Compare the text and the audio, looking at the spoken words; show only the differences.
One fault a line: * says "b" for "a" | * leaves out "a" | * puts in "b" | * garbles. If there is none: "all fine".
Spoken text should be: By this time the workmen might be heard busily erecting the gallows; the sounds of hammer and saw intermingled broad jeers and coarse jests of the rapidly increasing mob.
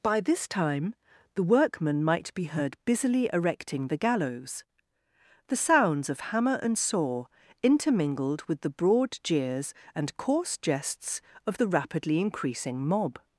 * puts in "with the"